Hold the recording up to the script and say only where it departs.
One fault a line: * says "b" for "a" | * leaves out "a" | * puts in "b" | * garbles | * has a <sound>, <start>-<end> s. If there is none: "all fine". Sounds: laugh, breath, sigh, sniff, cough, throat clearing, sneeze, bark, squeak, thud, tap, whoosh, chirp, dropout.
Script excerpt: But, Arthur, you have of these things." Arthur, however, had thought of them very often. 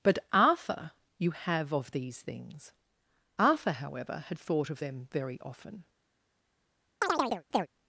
* has a chirp, 7.0-7.7 s